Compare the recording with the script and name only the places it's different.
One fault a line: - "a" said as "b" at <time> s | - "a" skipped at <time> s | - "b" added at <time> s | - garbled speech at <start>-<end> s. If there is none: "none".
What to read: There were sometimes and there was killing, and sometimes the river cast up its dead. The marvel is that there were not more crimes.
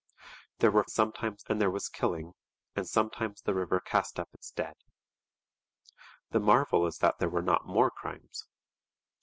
none